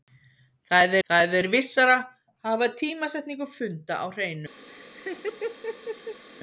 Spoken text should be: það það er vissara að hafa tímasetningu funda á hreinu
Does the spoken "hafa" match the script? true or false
true